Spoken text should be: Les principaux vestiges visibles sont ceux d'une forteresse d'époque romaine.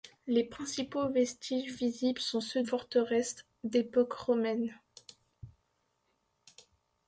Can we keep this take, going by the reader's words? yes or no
no